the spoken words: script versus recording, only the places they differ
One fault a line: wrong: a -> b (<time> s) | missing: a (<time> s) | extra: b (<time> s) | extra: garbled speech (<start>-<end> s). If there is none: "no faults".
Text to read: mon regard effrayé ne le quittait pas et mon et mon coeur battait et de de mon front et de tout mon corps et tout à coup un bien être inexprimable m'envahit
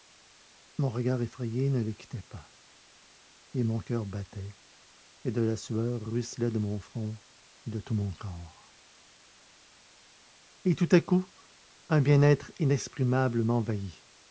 missing: et mon (3.8 s)
extra: la sueur ruisselait (5.4 s)